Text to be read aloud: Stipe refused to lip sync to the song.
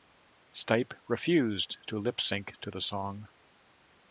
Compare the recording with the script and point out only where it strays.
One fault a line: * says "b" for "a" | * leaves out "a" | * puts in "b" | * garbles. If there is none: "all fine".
all fine